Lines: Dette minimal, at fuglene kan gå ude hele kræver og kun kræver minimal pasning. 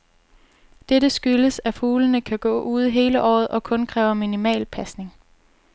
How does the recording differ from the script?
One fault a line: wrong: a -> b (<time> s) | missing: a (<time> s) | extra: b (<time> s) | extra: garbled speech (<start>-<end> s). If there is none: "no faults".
wrong: minimal -> skyldes (1.1 s)
wrong: kræver -> året (3.2 s)